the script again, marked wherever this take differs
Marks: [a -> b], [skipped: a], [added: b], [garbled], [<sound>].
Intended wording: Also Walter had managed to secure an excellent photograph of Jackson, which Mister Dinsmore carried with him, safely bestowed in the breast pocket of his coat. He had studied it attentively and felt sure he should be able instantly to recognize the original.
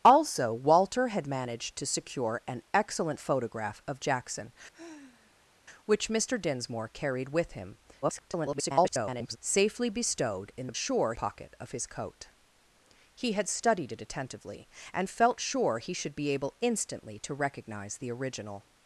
Also Walter had managed to secure an excellent photograph of Jackson, [sigh] which Mister Dinsmore carried with him, [garbled] safely bestowed in the [breast -> sure] pocket of his coat. He had studied it attentively and felt sure he should be able instantly to recognize the original.